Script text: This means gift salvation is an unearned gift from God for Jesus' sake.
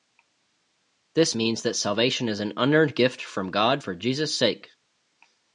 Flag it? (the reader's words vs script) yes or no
yes